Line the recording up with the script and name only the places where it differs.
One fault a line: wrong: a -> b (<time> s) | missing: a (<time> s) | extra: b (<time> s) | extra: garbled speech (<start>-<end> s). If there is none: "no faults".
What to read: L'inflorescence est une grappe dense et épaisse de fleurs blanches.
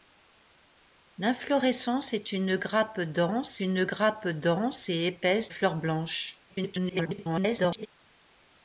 extra: une grappe dense (3.6 s)
missing: de (5.5 s)
extra: garbled speech (6.5-7.9 s)